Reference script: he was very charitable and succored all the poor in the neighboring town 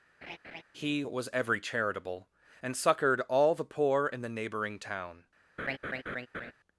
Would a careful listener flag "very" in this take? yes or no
yes